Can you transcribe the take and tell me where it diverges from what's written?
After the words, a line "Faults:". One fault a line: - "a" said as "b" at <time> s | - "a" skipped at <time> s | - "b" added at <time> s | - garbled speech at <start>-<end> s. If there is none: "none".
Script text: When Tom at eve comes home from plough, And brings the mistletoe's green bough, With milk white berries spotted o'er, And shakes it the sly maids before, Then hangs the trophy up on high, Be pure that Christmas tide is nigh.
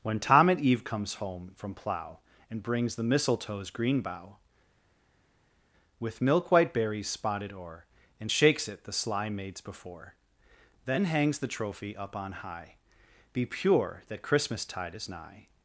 When Tom at eve comes home from plough, And brings the mistletoe's green bough, With milk white berries spotted o'er, And shakes it the sly maids before, Then hangs the trophy up on high, Be pure that Christmas tide is nigh.
Faults:
none